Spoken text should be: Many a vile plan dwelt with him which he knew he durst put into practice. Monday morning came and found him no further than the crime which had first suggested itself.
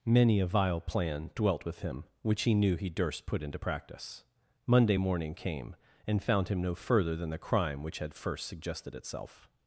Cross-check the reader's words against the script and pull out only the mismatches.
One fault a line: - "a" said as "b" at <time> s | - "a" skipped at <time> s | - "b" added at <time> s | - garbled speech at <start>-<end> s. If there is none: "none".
none